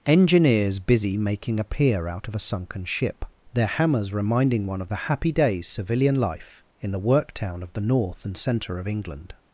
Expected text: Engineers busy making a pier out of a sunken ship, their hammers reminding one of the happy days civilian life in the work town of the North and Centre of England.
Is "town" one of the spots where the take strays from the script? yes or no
no